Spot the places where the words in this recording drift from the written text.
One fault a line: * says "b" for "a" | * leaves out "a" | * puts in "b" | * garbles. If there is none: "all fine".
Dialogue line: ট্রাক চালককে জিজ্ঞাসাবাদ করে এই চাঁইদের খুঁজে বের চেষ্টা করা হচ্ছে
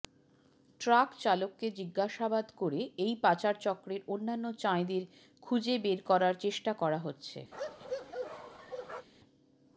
* puts in "পাচারচক্রের অন্যান্য"
* puts in "করার"